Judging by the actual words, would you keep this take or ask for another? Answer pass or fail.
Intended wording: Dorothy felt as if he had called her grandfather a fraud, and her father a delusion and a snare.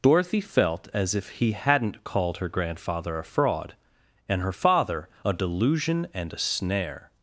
fail